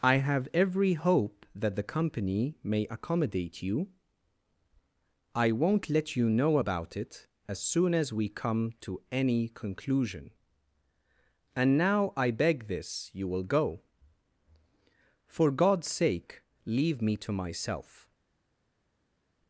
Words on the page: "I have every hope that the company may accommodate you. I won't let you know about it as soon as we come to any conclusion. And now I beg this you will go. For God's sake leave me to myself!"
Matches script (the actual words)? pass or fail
pass